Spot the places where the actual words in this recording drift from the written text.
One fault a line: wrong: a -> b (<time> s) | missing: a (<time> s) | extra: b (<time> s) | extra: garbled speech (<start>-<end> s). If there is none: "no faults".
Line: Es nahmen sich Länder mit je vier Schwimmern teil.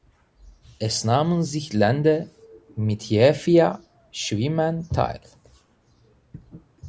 no faults